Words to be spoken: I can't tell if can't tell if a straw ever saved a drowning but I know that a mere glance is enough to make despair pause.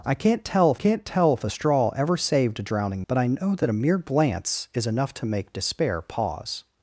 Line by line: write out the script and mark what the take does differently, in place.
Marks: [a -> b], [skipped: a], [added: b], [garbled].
I can't tell if can't tell if a straw ever saved a drowning but I know that a mere glance is enough to make despair pause.